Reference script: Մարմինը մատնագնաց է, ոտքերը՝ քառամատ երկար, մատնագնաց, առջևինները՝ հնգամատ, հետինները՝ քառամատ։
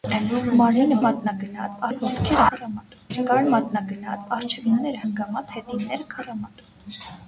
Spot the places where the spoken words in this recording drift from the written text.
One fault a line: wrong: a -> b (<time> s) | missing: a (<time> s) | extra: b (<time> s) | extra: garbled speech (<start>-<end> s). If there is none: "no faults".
no faults